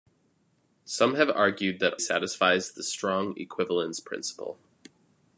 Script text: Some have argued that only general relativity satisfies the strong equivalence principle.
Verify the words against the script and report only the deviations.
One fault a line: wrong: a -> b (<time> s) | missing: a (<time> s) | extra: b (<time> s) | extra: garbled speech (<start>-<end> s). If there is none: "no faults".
missing: only general relativity (1.9 s)